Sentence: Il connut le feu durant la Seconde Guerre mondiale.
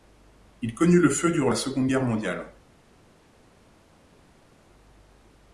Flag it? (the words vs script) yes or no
no